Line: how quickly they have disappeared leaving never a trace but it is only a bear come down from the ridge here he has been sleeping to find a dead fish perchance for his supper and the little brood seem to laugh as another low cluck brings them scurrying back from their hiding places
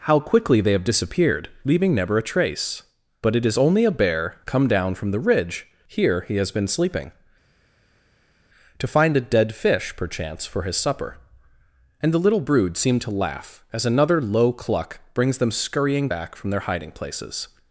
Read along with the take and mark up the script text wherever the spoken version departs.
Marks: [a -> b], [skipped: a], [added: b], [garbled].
how quickly they have disappeared leaving never a trace but it is only a bear come down from the ridge here he has been sleeping to find a dead fish perchance for his supper and the little brood seem to laugh as another low cluck brings them scurrying back from their hiding places